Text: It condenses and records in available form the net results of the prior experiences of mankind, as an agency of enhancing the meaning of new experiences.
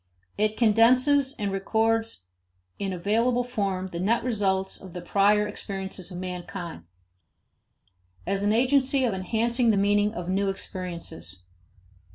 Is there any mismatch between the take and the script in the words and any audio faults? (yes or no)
no